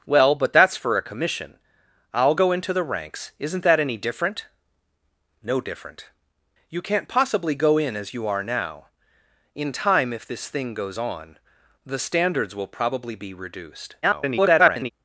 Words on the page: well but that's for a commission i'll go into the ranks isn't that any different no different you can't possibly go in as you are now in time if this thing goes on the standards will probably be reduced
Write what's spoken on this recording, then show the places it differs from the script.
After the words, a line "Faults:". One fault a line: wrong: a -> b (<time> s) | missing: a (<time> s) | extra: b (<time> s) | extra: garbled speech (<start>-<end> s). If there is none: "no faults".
well but that's for a commission i'll go into the ranks isn't that any different no different you can't possibly go in as you are now in time if this thing goes on the standards will probably be reduced [garbled]
Faults:
extra: garbled speech (14.0-14.9 s)